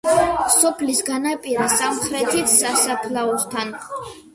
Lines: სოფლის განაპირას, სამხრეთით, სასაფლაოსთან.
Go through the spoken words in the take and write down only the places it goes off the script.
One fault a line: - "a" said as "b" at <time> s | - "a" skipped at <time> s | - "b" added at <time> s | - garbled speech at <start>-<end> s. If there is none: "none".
none